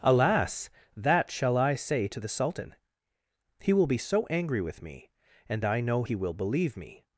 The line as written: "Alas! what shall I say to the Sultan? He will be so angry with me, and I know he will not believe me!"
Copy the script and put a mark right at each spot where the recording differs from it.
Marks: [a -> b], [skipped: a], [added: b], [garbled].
"Alas! [what -> that] shall I say to the Sultan? He will be so angry with me, and I know he will [skipped: not] believe me!"